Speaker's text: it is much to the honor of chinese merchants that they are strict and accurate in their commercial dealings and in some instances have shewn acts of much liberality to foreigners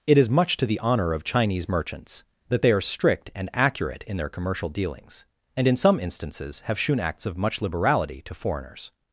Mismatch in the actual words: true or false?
false